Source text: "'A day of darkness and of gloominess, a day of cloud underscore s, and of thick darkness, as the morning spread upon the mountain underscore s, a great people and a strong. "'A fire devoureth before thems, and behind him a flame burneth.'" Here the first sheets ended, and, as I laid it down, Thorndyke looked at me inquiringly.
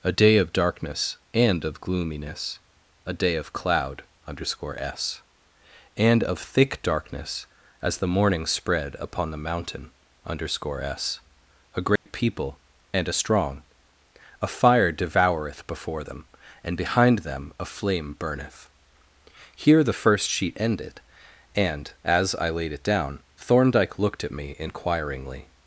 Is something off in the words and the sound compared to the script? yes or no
yes